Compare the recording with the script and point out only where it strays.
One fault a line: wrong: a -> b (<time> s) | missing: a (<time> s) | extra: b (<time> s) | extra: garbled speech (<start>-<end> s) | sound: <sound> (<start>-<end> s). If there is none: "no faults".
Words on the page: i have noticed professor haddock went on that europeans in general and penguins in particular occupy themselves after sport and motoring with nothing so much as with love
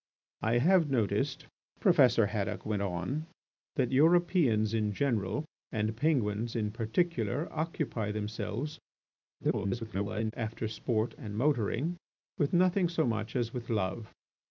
extra: garbled speech (9.4-10.3 s)